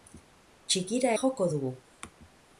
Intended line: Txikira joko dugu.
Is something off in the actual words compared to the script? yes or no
no